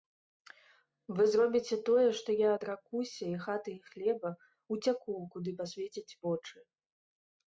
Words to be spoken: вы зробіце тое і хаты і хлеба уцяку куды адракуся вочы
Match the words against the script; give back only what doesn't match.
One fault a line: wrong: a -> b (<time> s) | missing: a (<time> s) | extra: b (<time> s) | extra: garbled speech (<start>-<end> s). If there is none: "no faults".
extra: што я адракуся (2.2 s)
wrong: адракуся -> пасвецяць (5.6 s)